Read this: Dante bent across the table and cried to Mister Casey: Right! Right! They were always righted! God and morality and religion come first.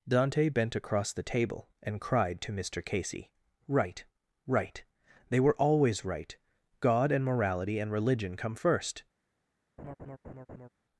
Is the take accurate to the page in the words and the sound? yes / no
no